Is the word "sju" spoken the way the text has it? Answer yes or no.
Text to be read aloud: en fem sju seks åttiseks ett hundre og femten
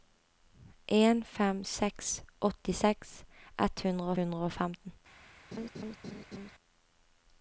no